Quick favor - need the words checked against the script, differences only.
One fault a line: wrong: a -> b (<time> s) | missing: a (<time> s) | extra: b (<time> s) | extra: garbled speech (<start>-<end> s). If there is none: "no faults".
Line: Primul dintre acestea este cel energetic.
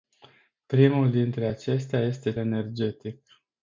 missing: cel (2.3 s)